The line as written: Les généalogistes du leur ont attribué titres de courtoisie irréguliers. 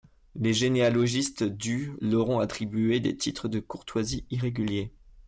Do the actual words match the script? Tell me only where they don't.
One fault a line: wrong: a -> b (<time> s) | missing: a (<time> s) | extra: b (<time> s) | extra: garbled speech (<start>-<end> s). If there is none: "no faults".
extra: des (3.0 s)